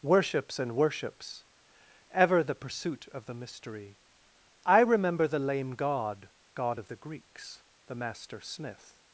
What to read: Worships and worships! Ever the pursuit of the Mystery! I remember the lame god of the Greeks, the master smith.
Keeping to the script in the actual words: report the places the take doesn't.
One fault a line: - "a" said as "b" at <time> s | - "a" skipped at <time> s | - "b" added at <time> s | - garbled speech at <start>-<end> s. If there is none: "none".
- "god" added at 6.5 s